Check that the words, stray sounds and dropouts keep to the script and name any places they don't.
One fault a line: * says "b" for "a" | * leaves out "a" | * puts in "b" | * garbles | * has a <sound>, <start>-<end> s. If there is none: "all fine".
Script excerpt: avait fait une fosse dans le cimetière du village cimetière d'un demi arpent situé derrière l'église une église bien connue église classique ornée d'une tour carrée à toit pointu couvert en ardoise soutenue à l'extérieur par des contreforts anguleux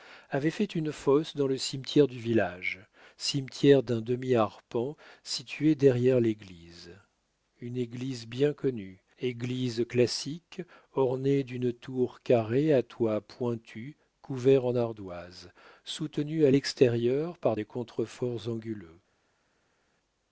all fine